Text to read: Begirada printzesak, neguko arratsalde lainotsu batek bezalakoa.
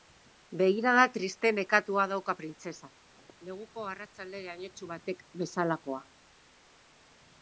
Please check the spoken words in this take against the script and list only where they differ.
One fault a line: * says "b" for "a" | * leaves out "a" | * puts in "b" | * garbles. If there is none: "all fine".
* puts in "triste nekatua dauka"